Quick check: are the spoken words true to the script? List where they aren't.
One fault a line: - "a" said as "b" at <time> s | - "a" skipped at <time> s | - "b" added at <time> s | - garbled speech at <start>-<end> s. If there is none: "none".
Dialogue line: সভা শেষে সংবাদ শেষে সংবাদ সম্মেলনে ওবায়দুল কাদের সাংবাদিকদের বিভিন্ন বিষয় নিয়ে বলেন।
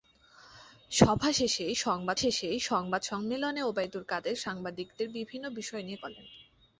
none